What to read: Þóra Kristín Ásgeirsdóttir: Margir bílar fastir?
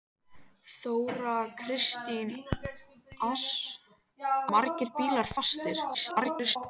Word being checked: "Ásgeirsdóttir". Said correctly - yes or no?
no